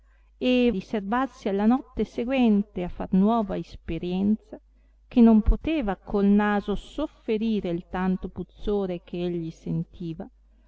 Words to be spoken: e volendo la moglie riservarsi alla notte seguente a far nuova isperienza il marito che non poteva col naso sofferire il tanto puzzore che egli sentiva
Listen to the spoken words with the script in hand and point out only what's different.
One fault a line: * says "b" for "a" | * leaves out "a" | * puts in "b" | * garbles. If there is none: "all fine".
* leaves out "volendo la moglie"
* leaves out "il marito"